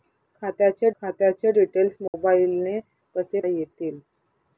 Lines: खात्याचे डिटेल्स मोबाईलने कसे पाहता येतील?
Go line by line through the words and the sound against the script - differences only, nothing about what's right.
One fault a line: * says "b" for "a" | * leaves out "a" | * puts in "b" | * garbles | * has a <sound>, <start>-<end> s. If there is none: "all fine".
* puts in "खात्याचे"
* has a dropout, 2.1-2.1 s
* leaves out "पाहता"